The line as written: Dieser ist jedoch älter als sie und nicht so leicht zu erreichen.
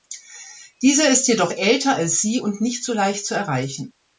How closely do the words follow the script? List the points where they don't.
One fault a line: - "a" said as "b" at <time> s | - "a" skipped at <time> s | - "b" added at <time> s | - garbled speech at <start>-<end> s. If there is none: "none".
none